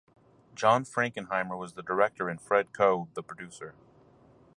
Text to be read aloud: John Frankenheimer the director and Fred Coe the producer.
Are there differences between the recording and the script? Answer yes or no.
yes